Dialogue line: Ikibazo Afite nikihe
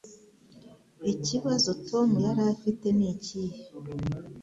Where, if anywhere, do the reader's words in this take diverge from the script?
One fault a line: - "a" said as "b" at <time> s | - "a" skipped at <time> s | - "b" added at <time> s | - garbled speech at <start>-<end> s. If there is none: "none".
- "Tom yari" added at 1.9 s